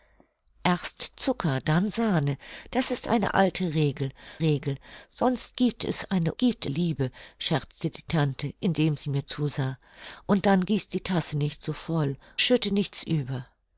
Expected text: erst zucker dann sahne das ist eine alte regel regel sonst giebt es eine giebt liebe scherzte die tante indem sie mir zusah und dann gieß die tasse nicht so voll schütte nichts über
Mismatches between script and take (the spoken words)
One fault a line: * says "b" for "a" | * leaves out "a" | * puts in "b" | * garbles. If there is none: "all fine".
all fine